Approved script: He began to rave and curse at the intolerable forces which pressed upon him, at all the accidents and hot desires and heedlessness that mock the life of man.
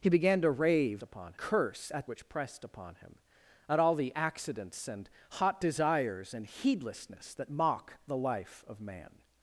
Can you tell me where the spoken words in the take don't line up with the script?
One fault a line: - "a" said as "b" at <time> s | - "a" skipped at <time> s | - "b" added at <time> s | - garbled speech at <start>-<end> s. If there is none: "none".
- "and" said as "upon" at 1.0 s
- "the intolerable forces" skipped at 2.1 s